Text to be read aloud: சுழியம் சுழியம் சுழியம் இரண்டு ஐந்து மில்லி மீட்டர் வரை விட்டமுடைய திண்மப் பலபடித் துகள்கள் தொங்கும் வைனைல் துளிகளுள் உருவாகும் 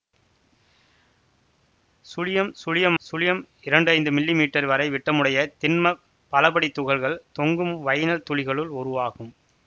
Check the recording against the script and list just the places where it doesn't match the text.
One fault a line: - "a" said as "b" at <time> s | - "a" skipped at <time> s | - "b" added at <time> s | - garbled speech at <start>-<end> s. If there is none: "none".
none